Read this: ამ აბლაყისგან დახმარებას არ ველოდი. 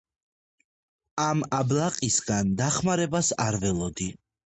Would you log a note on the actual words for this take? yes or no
no